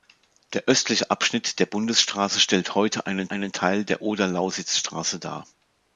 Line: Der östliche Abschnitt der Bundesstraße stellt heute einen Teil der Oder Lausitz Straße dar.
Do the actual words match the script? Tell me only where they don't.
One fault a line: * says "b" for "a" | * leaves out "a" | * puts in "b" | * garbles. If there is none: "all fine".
* puts in "einen"